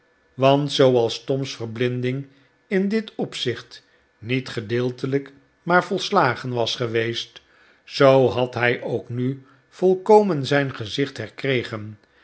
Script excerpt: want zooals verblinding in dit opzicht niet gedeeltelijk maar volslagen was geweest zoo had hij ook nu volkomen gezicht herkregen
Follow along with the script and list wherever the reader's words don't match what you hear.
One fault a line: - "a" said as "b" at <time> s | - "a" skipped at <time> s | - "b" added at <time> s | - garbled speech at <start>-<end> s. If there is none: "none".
- "tom's" added at 1.2 s
- "zijn" added at 10.5 s